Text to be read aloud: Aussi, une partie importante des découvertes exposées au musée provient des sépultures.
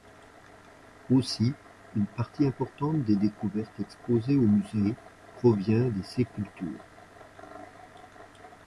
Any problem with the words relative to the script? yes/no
no